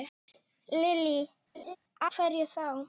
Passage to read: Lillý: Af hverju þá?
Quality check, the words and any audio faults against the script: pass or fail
fail